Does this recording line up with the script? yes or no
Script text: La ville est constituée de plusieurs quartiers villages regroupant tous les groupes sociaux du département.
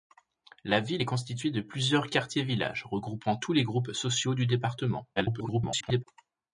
no